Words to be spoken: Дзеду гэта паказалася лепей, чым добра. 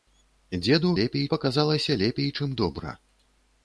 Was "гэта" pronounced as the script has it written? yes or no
no